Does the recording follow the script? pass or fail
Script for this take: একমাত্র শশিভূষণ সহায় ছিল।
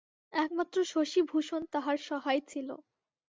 fail